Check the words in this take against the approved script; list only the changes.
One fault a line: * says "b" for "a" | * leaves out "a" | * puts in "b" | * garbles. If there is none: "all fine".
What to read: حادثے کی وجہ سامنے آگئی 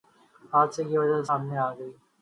all fine